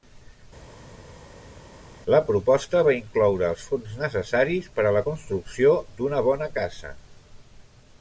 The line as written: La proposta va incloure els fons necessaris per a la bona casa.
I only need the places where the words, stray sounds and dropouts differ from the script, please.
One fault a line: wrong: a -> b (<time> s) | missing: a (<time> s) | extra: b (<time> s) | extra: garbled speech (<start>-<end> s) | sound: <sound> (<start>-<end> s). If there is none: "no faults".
extra: construcció d'una (5.1 s)